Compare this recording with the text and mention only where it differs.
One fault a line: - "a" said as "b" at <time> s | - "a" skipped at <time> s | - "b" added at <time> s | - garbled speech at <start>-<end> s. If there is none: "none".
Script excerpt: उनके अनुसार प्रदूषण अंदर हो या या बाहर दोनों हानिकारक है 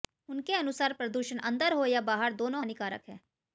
- "या" skipped at 2.0 s